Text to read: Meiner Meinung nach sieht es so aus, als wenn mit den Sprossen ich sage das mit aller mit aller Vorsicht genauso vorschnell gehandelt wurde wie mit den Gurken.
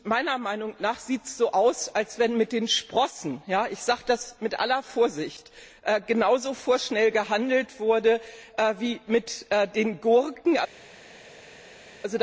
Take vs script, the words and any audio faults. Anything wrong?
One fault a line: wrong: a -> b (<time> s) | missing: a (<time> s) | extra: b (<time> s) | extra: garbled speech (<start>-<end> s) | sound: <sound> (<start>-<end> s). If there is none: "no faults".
missing: mit aller (4.8 s)